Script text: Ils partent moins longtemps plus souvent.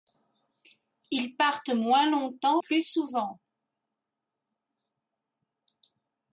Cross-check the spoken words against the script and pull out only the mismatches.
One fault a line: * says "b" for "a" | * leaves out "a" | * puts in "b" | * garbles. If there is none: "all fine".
all fine